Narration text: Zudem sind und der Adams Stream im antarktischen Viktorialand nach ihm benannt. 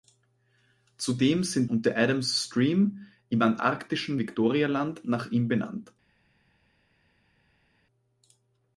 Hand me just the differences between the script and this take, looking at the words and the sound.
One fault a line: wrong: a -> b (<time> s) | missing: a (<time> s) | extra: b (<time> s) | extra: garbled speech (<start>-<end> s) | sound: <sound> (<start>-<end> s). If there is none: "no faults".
no faults